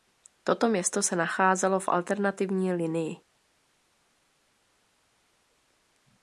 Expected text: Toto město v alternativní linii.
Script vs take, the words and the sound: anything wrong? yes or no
yes